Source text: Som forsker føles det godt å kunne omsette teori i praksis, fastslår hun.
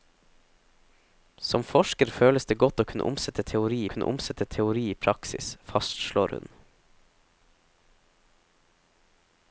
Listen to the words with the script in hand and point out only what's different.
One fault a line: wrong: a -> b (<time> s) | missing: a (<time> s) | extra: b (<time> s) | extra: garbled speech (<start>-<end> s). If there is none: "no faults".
extra: kunne omsette teori (3.9 s)